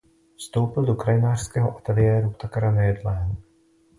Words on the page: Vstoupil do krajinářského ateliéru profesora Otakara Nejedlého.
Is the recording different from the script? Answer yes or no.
yes